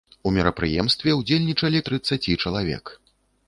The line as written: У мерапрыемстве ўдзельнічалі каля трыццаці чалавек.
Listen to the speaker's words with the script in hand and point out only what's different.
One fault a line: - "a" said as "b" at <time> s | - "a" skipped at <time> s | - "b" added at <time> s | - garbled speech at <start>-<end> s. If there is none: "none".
- "каля" skipped at 1.8 s